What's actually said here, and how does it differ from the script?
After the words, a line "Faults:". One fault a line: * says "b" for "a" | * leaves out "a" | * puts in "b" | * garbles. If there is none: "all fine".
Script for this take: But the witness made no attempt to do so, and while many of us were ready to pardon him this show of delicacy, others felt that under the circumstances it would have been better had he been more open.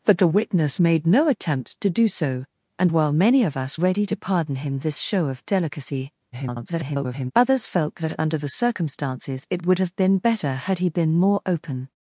But the witness made no attempt to do so, and while many of us ready to pardon him this show of delicacy, [garbled] others felt that under the circumstances it would have been better had he been more open.
Faults:
* leaves out "were"
* garbles